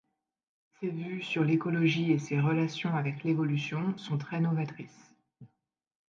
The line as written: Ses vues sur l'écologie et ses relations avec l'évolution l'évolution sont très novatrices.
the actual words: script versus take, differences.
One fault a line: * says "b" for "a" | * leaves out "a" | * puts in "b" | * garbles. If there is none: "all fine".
* leaves out "l'évolution"